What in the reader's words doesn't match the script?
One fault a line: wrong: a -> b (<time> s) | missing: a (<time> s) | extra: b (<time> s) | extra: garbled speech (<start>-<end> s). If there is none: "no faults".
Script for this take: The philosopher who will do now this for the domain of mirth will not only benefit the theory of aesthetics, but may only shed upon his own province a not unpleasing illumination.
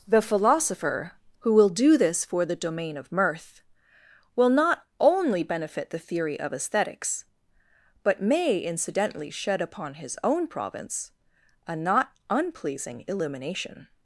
missing: now (2.0 s)
wrong: only -> incidentally (8.6 s)